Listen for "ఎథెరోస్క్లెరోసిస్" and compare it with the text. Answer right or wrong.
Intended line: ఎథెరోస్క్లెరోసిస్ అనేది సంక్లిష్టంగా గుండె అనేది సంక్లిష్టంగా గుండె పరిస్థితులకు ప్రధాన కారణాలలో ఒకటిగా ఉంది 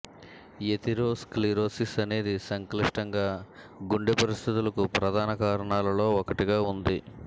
right